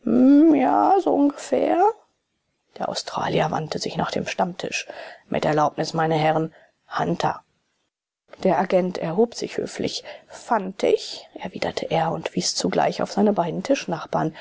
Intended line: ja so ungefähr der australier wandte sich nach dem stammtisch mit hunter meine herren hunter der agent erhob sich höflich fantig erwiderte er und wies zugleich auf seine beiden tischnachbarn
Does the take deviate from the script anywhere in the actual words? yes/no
yes